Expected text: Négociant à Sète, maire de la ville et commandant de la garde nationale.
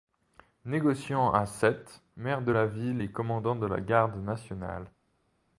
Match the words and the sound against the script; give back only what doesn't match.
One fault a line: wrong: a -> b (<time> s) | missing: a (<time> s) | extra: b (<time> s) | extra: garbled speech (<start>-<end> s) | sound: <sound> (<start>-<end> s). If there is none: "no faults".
no faults